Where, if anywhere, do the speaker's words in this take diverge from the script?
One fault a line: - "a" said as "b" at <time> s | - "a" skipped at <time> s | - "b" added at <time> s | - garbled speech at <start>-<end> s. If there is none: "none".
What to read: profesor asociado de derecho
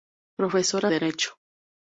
- "asociado de" skipped at 0.9 s